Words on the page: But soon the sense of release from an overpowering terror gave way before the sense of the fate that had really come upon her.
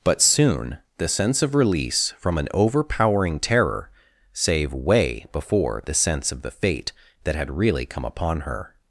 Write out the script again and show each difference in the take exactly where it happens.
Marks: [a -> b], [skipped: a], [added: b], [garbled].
But soon the sense of release from an overpowering terror [gave -> save] way before the sense of the fate that had really come upon her.